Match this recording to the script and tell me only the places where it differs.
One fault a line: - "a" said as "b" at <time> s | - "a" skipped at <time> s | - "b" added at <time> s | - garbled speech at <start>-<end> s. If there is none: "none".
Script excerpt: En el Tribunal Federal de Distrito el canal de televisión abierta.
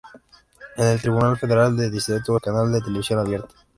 none